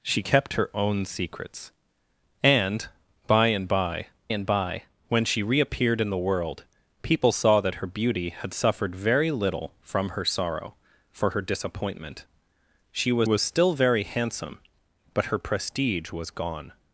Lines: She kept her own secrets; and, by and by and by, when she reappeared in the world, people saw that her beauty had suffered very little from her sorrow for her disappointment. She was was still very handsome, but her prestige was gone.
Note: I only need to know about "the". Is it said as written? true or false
true